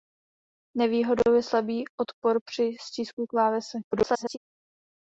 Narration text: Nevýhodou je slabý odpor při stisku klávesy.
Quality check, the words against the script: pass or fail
fail